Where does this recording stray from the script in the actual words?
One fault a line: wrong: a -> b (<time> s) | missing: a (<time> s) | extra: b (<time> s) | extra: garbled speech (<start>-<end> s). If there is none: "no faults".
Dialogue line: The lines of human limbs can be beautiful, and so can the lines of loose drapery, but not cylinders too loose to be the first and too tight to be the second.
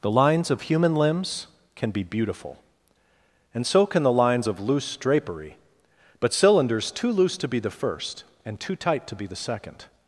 missing: not (6.3 s)